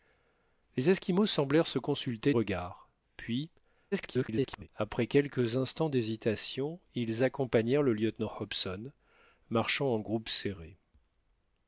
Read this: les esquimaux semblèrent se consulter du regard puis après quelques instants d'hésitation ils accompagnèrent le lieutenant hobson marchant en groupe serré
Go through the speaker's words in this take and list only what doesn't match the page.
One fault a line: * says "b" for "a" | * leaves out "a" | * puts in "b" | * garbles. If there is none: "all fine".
* leaves out "du"
* garbles